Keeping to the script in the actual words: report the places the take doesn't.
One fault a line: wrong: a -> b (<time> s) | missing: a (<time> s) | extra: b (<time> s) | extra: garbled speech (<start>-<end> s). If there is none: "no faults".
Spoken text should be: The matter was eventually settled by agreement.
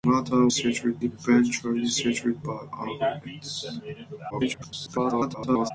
wrong: was -> settled (0.5 s)
extra: garbled speech (4.3-5.7 s)